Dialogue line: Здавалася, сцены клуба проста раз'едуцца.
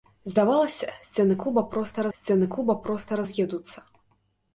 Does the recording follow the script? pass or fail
fail